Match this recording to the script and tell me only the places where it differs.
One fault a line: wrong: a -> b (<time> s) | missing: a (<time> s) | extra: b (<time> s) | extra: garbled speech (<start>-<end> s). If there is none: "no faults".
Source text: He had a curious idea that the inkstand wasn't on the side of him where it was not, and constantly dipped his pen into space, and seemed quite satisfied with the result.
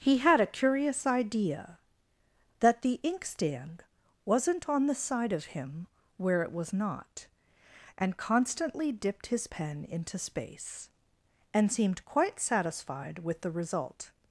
no faults